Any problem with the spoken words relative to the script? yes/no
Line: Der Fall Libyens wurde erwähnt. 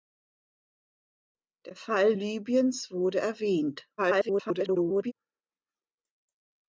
yes